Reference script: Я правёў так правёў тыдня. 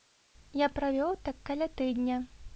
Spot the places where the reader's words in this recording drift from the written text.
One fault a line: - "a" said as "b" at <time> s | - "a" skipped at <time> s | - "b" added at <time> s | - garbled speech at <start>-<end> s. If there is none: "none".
- "правёў" said as "каля" at 1.5 s